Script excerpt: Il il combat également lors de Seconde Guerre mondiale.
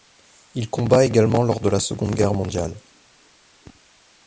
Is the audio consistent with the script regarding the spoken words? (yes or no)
no